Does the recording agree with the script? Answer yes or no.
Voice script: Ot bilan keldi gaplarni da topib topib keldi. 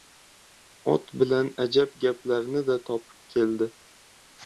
no